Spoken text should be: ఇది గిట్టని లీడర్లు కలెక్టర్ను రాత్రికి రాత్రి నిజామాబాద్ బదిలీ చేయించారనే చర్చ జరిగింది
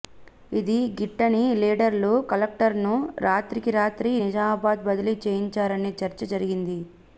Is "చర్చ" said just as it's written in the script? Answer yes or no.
yes